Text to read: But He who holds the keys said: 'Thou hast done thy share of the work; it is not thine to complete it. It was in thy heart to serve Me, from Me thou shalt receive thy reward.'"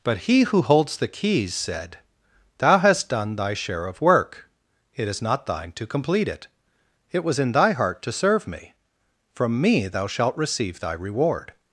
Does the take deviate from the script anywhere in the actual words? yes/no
yes